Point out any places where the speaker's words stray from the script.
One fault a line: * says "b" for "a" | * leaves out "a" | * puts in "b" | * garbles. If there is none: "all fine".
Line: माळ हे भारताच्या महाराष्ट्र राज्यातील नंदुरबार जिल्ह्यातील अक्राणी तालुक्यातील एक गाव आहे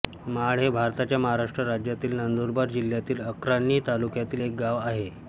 all fine